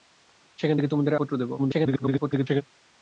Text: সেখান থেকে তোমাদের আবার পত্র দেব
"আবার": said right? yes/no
no